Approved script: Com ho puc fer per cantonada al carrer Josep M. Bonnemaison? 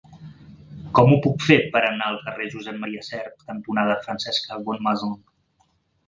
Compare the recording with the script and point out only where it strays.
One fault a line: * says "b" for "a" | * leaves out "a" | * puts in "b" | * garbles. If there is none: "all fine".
* says "anar" for "cantonada"
* puts in "Sert cantonada Francesca"